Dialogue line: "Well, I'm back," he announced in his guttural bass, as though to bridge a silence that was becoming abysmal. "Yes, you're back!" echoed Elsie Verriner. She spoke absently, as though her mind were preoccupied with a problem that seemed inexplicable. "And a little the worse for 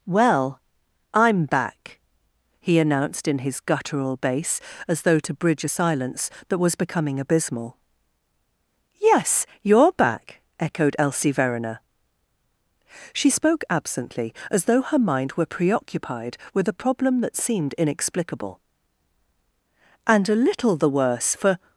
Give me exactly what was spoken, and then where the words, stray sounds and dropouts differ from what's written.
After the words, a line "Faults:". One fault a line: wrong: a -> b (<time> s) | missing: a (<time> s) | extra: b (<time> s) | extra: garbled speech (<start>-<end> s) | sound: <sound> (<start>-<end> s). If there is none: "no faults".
"Well, I'm back," he announced in his guttural bass, as though to bridge a silence that was becoming abysmal. "Yes, you're back!" echoed Elsie Verriner. She spoke absently, as though her mind were preoccupied with a problem that seemed inexplicable. "And a little the worse for
Faults:
no faults